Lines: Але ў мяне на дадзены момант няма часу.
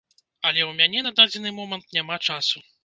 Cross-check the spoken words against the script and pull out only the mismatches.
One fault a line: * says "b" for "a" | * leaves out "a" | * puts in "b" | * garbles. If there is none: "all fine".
all fine